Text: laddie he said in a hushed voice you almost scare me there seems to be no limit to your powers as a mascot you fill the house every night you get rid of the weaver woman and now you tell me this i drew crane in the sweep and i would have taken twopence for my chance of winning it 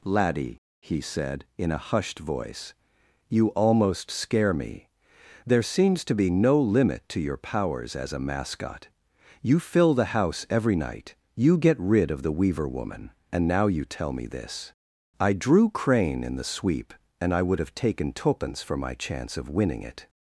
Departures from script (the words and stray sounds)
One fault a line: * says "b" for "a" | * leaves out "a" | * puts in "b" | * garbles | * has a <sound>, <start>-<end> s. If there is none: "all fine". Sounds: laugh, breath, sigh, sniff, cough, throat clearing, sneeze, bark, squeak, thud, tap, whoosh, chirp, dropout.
all fine